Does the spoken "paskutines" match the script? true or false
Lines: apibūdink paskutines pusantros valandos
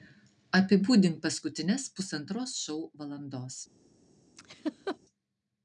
true